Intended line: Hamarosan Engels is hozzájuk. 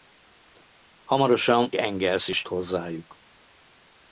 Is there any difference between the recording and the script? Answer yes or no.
no